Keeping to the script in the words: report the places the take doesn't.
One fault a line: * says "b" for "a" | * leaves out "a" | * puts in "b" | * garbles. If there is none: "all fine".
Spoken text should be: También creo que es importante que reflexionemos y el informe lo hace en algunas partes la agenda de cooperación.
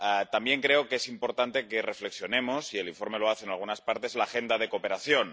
all fine